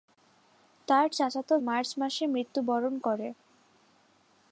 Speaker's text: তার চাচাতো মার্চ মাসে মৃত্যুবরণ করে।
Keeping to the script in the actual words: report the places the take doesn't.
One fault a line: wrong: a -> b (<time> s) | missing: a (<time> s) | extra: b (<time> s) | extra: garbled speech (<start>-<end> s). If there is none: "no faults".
no faults